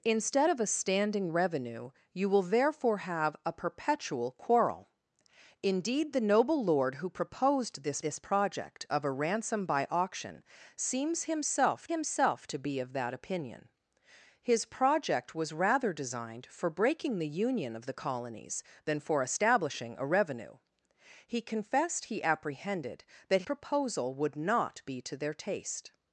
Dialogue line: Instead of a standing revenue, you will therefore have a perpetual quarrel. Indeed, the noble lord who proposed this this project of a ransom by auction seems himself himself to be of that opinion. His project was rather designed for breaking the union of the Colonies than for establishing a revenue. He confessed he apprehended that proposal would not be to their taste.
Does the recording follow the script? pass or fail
pass